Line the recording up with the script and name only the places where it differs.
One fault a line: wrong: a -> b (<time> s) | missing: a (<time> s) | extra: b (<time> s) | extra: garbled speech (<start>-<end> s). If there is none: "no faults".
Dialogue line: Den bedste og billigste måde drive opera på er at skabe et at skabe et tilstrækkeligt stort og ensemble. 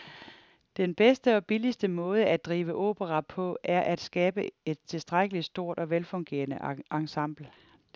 extra: at (2.2 s)
missing: at skabe et (4.8 s)
extra: velfungerende (5.9 s)